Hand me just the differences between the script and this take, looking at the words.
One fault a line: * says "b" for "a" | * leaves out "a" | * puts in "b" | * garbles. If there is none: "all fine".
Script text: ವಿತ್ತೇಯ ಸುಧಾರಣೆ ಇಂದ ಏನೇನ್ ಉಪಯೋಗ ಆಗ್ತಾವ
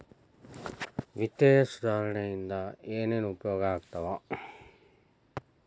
all fine